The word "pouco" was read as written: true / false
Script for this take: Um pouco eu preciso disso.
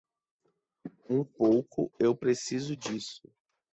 true